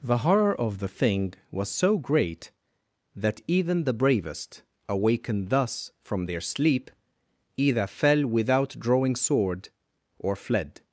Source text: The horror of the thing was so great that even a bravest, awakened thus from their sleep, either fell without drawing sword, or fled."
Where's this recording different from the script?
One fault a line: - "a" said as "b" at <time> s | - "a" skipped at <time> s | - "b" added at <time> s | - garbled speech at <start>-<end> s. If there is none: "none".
- "a" said as "the" at 3.8 s